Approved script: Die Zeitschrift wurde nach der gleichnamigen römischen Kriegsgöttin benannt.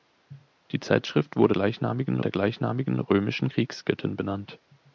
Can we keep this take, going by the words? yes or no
no